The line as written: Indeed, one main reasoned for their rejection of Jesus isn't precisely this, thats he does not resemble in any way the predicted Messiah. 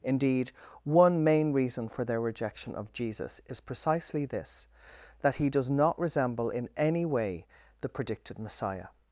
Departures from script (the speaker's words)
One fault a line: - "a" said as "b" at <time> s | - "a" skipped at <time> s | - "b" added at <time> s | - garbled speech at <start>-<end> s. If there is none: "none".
- "reasoned" said as "reason" at 1.5 s
- "isn't" said as "is" at 3.5 s
- "thats" said as "that" at 5.2 s